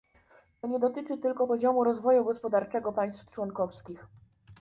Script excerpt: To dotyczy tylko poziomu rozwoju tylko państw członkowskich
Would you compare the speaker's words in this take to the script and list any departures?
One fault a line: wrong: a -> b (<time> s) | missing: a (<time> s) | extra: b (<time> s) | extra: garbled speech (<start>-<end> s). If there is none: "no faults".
extra: nie (0.7 s)
wrong: tylko -> gospodarczego (2.2 s)